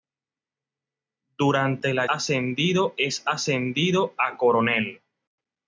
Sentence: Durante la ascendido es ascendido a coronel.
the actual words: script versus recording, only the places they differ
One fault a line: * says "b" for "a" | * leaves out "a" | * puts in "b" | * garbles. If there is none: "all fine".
all fine